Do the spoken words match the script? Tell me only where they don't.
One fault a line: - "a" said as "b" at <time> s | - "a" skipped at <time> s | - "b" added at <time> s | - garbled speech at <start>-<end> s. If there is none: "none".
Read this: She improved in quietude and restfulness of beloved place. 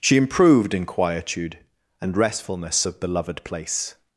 none